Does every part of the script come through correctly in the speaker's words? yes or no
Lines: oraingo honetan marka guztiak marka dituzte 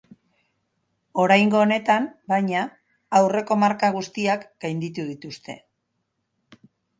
no